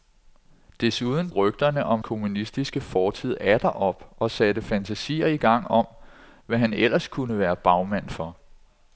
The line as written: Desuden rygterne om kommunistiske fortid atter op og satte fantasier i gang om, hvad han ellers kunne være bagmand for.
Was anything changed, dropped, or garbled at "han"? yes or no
no